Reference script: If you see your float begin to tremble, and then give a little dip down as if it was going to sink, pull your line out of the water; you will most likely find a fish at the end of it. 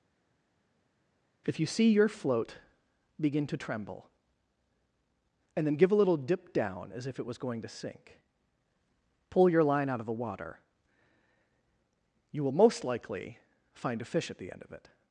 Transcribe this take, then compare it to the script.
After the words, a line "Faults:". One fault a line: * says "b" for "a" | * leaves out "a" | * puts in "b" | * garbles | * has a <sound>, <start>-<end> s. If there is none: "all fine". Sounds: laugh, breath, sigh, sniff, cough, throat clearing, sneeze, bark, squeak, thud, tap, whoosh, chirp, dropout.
If you see your float begin to tremble, and then give a little dip down as if it was going to sink, pull your line out of the water; you will most likely find a fish at the end of it.
Faults:
all fine